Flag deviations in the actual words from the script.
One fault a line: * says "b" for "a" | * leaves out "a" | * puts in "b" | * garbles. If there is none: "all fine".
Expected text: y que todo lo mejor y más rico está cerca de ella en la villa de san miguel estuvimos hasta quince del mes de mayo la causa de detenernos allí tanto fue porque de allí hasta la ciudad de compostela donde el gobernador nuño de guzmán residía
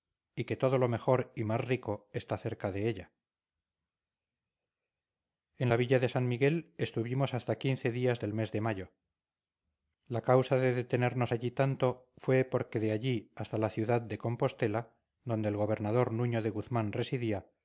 * puts in "días"